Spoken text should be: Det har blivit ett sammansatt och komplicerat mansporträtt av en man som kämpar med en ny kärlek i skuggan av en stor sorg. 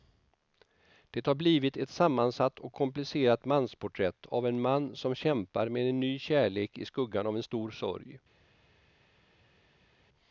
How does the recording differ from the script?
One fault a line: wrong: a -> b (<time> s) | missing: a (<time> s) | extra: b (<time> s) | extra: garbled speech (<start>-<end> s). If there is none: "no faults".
no faults